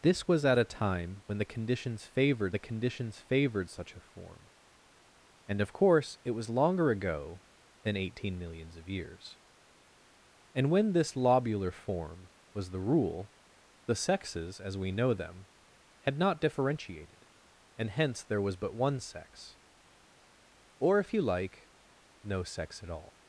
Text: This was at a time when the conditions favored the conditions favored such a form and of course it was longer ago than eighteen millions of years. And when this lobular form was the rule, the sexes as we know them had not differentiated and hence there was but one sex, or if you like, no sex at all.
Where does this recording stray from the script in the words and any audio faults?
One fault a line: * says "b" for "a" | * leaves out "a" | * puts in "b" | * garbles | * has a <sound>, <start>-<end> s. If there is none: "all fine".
all fine